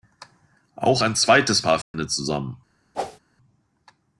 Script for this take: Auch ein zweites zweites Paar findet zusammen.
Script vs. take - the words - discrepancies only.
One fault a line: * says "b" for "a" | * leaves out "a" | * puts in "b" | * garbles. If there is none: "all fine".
* leaves out "zweites"